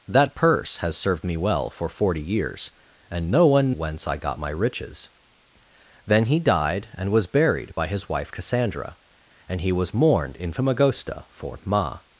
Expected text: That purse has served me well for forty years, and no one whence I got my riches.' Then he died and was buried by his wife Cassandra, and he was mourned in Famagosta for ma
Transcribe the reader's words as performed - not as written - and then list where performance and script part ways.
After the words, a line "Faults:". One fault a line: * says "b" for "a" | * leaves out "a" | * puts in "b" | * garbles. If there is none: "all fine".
That purse has served me well for forty years, and no one whence I got my riches.' Then he died and was buried by his wife Cassandra, and he was mourned in Famagosta for ma
Faults:
all fine